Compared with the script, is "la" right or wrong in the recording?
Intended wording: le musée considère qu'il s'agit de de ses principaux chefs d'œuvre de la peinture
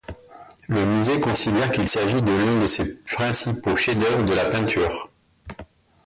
right